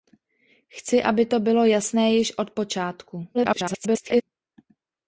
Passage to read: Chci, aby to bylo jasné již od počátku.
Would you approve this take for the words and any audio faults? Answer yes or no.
no